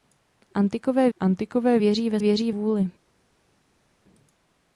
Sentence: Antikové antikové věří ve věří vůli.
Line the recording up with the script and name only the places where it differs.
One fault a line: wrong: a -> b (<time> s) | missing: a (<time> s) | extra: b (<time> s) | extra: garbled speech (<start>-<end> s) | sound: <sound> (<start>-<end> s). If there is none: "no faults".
no faults